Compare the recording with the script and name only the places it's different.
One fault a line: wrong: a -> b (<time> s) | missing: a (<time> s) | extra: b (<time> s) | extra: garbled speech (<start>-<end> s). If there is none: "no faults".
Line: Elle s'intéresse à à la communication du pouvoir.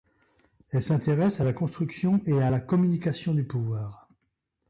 extra: la construction et (1.4 s)